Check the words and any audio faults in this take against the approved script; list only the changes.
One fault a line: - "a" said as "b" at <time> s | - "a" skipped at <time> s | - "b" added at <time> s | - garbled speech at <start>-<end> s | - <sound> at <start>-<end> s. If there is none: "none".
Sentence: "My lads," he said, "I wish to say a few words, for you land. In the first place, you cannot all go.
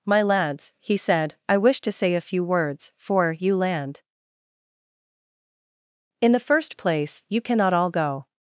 none